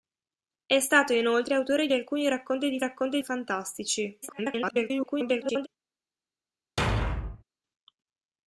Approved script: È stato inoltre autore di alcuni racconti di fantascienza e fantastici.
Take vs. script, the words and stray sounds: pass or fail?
fail